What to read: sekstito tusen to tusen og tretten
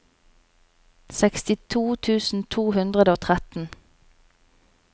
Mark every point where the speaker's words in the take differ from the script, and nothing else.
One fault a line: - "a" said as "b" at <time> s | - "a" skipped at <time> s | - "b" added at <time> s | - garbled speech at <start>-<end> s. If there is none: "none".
- "tusen" said as "hundre" at 2.8 s